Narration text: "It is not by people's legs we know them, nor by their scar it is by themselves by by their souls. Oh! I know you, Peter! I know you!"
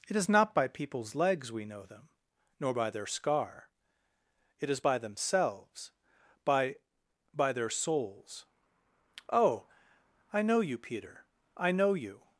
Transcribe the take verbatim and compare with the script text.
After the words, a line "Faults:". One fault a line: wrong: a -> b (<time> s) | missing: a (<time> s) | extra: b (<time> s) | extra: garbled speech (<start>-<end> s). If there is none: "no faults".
"It is not by people's legs we know them, nor by their scar it is by themselves by by their souls. Oh! I know you, Peter! I know you!"
Faults:
no faults